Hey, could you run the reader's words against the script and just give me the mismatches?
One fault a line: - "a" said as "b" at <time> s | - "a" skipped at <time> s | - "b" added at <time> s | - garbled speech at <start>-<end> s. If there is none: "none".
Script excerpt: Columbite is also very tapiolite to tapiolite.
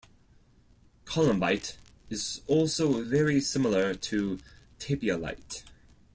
- "tapiolite" said as "similar" at 3.4 s